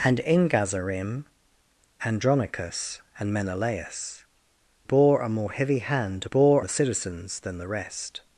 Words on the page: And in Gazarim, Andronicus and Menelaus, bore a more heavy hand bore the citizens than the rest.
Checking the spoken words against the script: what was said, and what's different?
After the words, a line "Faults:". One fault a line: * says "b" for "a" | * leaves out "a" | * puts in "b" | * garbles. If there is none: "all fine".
And in Gazarim, Andronicus and Menelaus, bore a more heavy hand bore the citizens than the rest.
Faults:
all fine